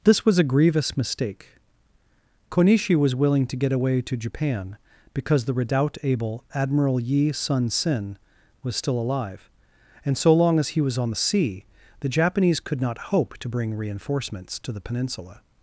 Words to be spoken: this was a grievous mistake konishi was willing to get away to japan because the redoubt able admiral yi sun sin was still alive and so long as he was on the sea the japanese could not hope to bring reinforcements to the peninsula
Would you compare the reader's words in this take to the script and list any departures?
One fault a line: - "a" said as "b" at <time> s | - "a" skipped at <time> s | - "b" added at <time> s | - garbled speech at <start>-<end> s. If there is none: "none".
none